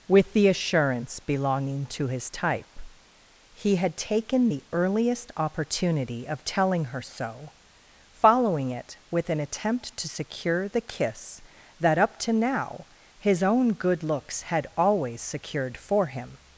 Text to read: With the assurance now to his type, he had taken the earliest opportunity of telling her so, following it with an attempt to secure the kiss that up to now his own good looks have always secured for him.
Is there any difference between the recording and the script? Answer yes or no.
yes